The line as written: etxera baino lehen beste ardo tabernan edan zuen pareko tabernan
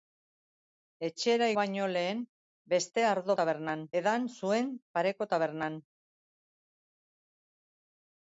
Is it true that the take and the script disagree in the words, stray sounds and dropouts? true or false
false